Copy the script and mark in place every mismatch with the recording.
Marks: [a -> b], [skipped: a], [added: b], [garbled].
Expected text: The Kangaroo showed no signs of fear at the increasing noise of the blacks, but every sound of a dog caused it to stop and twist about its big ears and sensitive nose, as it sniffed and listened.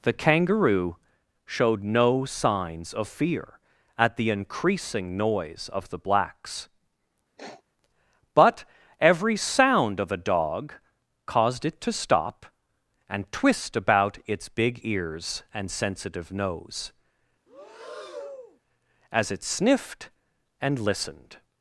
The Kangaroo showed no signs of fear at the increasing noise of the blacks, but every sound of a dog caused it to stop and twist about its big ears and sensitive nose, as it sniffed and listened.